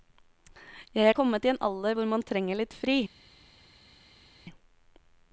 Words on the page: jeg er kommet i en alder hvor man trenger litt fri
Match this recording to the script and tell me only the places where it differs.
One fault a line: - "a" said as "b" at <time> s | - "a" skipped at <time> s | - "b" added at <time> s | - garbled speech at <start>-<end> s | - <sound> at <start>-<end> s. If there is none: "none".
none